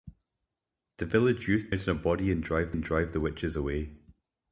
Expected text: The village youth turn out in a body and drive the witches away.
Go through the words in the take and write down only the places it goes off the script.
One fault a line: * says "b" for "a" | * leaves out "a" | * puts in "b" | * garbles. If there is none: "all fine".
* leaves out "turn"
* puts in "and drive"